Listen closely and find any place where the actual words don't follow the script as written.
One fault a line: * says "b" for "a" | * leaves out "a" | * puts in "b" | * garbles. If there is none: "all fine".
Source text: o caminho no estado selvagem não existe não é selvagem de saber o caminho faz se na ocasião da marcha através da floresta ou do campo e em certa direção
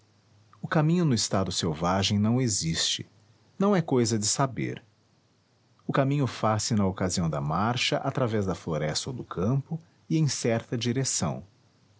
* says "cousa" for "selvagem"